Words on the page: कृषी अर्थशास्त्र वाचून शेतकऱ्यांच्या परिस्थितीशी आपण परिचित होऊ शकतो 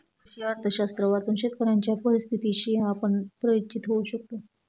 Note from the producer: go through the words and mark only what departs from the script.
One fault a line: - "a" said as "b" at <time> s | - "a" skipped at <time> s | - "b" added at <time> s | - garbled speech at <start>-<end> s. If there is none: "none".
none